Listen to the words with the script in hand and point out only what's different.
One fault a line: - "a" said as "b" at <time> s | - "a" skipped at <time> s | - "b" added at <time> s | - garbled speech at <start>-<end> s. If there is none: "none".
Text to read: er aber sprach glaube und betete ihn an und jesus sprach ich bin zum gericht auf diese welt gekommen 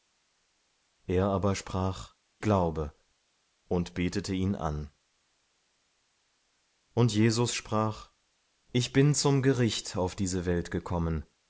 none